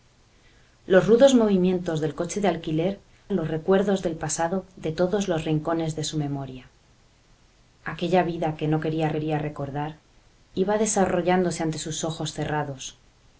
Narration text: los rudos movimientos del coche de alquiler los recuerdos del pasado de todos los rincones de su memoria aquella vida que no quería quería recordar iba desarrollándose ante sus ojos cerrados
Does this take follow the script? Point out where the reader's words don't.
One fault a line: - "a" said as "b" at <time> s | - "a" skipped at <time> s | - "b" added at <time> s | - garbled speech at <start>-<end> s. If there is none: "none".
none